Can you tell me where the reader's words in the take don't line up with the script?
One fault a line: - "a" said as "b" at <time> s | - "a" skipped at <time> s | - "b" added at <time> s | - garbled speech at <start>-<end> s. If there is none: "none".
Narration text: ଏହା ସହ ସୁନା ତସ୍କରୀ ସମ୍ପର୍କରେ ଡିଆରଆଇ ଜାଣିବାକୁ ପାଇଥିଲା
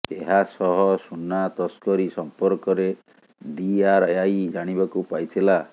none